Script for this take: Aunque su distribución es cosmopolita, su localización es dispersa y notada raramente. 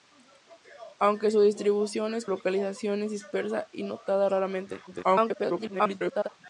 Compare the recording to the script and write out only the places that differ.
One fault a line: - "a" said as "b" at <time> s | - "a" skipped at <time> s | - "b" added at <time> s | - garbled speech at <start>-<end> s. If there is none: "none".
- "cosmopolita su" skipped at 2.2 s
- garbled speech at 4.9-6.3 s